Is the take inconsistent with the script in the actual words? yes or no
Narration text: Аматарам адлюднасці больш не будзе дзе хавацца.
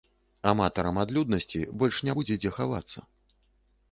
no